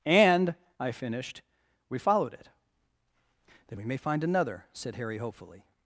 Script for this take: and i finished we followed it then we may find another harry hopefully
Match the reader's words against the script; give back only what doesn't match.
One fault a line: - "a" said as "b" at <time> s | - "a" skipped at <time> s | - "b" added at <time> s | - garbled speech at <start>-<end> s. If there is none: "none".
- "said" added at 4.7 s